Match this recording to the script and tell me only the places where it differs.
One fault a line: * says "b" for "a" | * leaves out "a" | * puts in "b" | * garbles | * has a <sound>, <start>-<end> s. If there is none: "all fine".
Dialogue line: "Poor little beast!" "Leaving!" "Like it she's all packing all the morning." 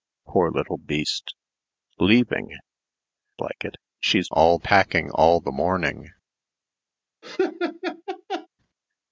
* has a laugh, 7.2-8.5 s